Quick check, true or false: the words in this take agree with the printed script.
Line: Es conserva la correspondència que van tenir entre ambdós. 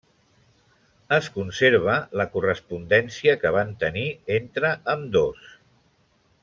true